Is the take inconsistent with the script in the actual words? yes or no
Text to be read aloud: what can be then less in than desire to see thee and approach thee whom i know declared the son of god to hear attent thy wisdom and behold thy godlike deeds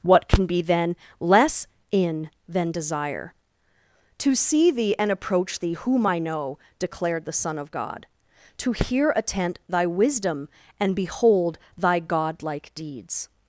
no